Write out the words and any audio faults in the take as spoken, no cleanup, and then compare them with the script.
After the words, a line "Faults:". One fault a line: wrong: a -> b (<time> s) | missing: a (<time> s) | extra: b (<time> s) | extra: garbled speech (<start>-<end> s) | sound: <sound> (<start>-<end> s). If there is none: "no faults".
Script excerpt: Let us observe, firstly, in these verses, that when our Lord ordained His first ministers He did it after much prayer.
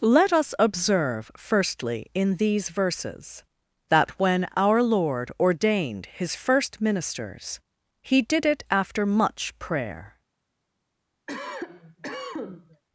Let us observe, firstly, in these verses, that when our Lord ordained His first ministers He did it after much prayer.
Faults:
sound: cough (11.3-12.8 s)